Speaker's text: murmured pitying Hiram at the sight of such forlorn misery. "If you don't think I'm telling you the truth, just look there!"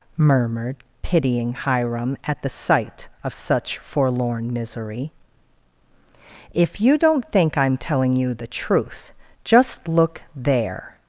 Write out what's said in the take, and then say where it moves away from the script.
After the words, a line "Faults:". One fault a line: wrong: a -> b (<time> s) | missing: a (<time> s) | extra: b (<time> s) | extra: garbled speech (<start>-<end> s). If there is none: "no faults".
murmured pitying Hiram at the sight of such forlorn misery. "If you don't think I'm telling you the truth, just look there!"
Faults:
no faults